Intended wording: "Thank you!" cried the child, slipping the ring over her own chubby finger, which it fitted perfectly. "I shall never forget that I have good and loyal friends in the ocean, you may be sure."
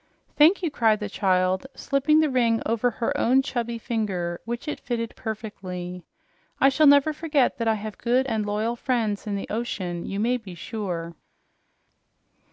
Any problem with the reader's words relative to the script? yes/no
no